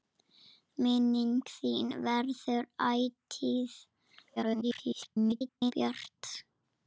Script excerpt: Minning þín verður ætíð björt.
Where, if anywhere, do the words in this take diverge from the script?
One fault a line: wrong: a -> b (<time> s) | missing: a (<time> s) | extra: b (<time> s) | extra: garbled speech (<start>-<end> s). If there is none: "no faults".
extra: garbled speech (4.4-5.7 s)